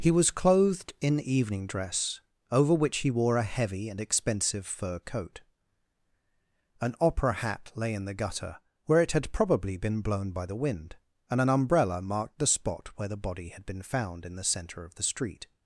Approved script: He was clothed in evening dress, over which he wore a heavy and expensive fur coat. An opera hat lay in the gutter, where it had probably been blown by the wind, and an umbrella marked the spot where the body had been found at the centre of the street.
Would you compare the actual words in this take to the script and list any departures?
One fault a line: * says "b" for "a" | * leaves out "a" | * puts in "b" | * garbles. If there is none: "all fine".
* says "in" for "at"